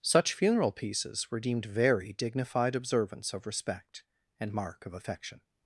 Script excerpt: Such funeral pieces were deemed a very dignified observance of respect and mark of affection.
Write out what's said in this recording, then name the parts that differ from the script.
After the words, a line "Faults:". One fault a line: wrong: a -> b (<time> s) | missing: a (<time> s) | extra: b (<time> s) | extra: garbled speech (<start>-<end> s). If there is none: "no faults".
Such funeral pieces were deemed very dignified observance of respect and mark of affection.
Faults:
missing: a (1.6 s)